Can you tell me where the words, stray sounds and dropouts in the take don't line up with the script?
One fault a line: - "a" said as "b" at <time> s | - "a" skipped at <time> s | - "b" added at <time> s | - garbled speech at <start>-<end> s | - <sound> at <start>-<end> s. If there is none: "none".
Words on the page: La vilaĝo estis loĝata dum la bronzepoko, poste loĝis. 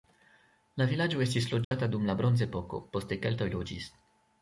- dropout at 1.6-1.7 s
- "keltoj" added at 3.3 s